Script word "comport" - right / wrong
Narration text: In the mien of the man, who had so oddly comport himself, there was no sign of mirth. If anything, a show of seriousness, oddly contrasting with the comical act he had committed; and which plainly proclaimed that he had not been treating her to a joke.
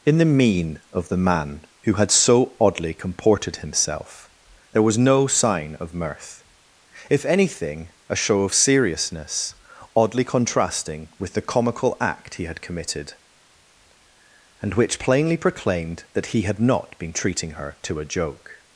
wrong